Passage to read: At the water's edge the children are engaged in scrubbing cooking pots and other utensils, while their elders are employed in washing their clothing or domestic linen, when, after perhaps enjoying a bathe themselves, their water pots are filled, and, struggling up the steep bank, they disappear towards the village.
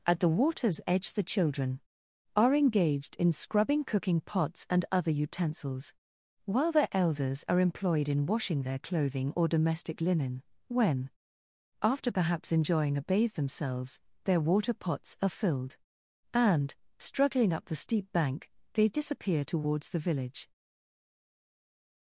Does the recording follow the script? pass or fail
pass